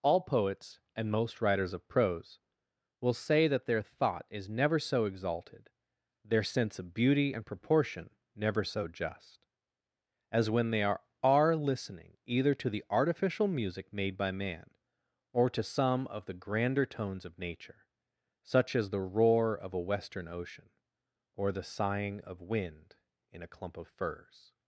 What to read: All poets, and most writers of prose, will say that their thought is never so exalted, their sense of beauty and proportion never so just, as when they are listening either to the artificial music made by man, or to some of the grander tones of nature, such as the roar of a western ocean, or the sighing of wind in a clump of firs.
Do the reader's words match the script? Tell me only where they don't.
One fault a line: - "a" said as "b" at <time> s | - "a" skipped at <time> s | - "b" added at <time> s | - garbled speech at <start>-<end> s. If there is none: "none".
- "are" added at 11.2 s